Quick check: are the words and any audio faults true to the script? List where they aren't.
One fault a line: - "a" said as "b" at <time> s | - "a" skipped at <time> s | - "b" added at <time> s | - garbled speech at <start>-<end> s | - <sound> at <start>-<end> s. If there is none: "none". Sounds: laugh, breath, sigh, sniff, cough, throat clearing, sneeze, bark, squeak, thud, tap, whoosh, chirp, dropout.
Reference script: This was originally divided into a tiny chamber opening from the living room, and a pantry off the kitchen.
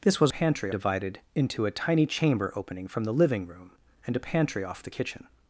- "originally" said as "pantry" at 0.3 s